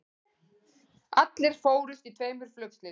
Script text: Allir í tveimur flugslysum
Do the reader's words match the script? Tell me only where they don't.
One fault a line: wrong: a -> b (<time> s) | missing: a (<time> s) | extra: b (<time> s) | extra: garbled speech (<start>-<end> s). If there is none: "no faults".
extra: fórust (1.7 s)